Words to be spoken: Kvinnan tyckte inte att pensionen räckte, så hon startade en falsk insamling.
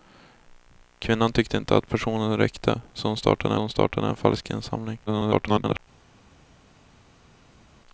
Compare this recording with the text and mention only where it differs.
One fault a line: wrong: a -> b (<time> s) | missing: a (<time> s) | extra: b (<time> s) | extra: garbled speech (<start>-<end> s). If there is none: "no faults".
extra: hon startade (3.6 s)
extra: garbled speech (5.1-5.8 s)